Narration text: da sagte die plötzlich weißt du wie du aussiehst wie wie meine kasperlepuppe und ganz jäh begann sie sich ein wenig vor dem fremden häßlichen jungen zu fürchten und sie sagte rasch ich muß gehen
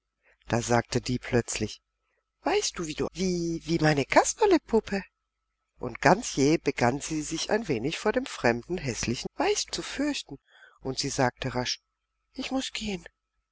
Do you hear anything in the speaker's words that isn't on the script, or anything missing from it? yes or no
yes